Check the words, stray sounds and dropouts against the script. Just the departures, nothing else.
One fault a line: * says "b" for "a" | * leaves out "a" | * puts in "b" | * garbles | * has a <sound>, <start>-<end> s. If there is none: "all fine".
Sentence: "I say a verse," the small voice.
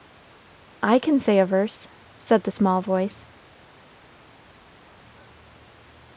* puts in "can"
* puts in "said"